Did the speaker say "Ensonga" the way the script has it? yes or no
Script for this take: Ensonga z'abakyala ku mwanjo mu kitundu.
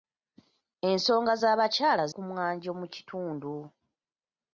yes